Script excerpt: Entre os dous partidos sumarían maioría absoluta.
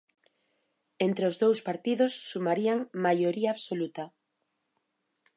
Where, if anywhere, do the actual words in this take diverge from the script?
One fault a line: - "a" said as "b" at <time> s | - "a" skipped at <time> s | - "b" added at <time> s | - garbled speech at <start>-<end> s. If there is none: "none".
none